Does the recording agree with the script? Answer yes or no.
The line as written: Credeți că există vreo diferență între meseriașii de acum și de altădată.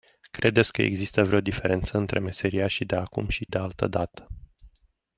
yes